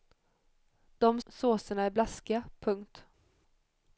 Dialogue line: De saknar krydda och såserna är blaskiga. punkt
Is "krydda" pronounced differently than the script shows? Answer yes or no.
yes